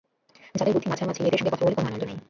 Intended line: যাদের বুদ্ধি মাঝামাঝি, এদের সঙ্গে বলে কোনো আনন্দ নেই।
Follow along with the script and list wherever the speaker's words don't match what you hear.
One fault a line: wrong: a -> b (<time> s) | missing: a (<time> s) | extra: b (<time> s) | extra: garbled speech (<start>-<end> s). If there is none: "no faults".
extra: কথা (1.5 s)